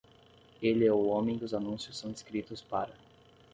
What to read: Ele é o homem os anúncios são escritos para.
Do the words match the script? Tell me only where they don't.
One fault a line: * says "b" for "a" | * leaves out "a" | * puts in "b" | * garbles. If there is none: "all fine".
all fine